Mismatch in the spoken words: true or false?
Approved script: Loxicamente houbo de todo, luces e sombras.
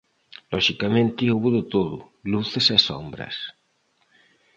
false